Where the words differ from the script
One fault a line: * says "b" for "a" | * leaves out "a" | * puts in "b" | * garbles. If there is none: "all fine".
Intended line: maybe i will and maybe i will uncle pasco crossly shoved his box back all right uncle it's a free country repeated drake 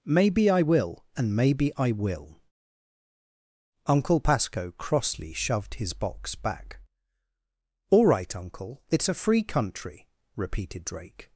all fine